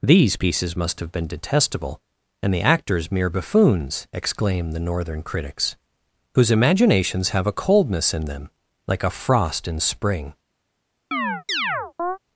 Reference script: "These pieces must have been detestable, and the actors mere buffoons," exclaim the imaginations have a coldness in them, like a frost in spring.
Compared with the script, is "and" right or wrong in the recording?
right